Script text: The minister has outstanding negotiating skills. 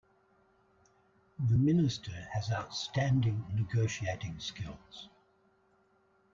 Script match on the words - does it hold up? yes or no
yes